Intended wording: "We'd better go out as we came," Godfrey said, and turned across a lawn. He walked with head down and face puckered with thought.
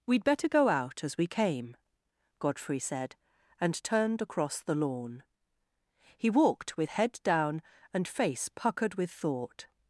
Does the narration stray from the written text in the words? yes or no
yes